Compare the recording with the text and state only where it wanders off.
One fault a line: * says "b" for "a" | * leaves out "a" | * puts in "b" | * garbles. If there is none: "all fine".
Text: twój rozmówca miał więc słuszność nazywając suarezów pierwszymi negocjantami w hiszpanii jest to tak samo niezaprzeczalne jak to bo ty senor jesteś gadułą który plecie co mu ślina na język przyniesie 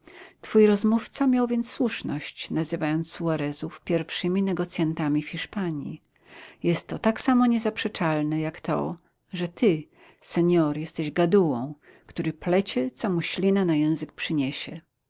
* says "że" for "bo"